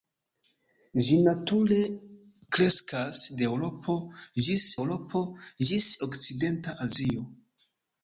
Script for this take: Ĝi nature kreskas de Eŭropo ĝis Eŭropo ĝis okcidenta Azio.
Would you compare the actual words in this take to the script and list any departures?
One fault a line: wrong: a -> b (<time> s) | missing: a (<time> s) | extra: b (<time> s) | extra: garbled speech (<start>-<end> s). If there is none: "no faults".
no faults